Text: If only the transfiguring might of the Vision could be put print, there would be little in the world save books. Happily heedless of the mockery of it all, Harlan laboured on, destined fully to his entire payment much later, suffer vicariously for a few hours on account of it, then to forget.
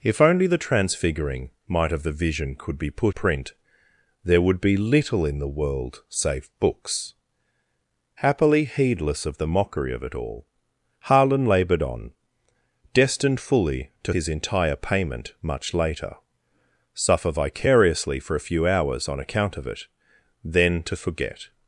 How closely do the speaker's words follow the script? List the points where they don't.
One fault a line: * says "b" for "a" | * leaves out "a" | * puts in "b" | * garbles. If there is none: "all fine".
all fine